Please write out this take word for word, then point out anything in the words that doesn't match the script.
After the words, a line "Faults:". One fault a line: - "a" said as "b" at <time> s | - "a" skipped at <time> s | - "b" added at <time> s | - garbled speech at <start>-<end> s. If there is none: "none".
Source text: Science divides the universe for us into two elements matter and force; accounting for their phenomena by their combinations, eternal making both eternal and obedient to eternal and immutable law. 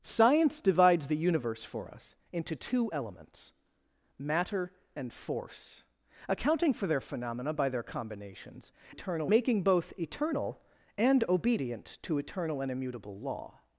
Science divides the universe for us into two elements matter and force; accounting for their phenomena by their combinations, eternal making both eternal and obedient to eternal and immutable law.
Faults:
none